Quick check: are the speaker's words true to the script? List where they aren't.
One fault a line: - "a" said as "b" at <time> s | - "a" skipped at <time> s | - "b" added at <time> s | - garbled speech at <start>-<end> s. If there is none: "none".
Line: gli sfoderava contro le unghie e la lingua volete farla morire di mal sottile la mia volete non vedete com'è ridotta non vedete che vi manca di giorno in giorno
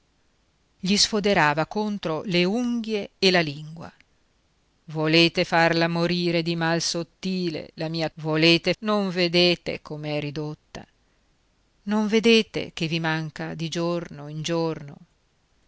none